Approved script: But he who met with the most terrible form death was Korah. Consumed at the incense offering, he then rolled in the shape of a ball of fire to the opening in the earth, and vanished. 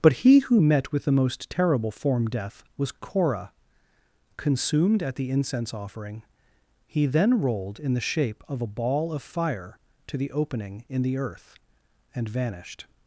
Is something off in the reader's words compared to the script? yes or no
no